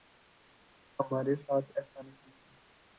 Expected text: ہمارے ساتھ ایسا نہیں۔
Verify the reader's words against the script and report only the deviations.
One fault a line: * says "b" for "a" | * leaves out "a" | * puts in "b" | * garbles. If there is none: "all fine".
all fine